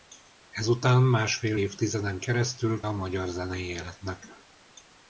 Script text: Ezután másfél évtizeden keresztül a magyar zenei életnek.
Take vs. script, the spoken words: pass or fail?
pass